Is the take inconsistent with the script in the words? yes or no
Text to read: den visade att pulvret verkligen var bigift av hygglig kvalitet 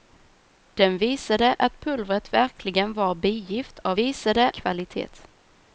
yes